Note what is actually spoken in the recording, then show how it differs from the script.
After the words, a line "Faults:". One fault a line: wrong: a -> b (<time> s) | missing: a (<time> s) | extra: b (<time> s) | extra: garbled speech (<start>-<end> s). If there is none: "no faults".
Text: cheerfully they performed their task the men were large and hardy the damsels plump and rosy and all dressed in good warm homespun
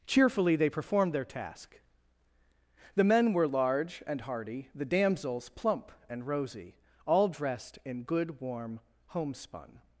cheerfully they performed their task the men were large and hardy the damsels plump and rosy all dressed in good warm homespun
Faults:
missing: and (6.8 s)